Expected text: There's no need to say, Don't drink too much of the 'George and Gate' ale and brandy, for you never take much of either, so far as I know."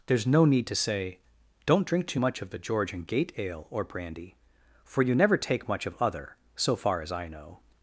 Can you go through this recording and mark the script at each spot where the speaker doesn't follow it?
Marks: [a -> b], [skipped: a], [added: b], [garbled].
There's no need to say, Don't drink too much of the 'George and Gate' ale [and -> or] brandy, for you never take much of [either, -> other] so far as I know."